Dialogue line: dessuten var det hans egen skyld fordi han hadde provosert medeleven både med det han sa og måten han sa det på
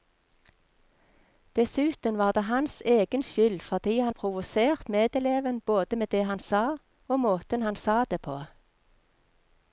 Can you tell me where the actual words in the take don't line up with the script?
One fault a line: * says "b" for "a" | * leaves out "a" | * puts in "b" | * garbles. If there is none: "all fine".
* leaves out "hadde"